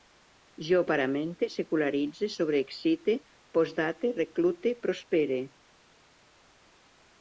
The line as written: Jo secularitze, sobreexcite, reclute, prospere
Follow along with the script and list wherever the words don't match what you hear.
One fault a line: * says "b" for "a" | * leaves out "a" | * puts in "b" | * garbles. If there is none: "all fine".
* puts in "paramente"
* puts in "postdate"